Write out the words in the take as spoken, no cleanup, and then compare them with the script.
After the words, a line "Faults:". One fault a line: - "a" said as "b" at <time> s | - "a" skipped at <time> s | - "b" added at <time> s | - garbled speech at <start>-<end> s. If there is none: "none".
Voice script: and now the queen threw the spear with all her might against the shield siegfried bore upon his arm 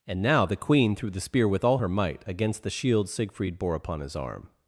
and now the queen threw the spear with all her might against the shield siegfried bore upon his arm
Faults:
none